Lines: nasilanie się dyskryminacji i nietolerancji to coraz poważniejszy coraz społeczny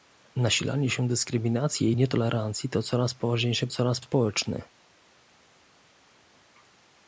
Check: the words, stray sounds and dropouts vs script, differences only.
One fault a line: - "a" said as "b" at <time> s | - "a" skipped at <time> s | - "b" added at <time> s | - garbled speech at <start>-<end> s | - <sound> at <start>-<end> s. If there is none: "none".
none